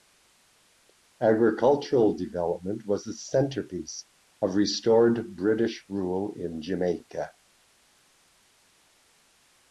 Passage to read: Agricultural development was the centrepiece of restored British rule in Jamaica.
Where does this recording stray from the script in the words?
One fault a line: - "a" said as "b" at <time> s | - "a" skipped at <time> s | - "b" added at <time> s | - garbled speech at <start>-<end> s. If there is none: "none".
none